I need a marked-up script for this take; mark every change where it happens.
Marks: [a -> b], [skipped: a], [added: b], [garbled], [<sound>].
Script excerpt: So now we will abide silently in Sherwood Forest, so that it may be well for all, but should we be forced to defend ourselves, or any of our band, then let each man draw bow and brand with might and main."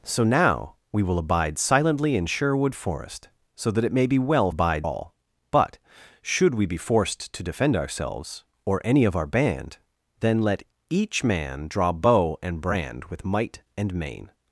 So now we will abide silently in Sherwood Forest, so that it may be well [for -> abide] all, but should we be forced to defend ourselves, or any of our band, then let each man draw bow and brand with might and main."